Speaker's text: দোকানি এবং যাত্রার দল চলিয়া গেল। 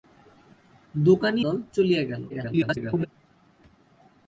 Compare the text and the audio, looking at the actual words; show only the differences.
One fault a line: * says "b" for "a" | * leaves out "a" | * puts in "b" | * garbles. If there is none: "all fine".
* leaves out "এবং যাত্রার"
* garbles